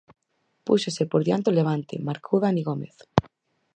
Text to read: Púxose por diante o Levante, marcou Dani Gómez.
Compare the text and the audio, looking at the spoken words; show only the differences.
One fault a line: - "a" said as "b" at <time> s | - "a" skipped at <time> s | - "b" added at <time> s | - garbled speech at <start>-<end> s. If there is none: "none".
none